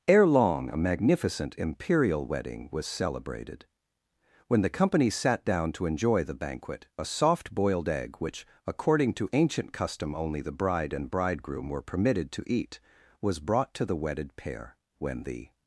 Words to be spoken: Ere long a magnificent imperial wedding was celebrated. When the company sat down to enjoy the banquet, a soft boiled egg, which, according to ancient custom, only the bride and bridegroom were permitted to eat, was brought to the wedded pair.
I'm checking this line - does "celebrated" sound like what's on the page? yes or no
yes